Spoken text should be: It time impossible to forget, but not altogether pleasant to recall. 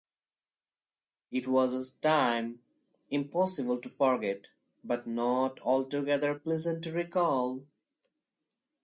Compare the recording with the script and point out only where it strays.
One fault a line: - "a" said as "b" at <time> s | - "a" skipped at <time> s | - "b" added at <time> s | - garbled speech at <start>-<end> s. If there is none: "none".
- "was a" added at 1.5 s